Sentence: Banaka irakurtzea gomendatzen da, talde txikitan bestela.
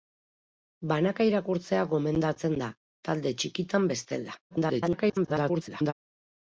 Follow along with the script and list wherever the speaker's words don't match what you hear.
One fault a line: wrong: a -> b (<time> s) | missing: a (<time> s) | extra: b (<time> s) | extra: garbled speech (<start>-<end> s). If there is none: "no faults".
extra: garbled speech (4.5-5.9 s)